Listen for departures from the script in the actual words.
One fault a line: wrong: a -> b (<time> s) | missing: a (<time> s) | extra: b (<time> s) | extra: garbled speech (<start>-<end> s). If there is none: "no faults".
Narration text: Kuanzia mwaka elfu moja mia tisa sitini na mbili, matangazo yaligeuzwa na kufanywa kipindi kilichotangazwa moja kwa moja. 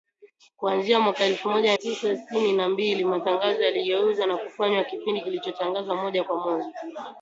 missing: mia (1.8 s)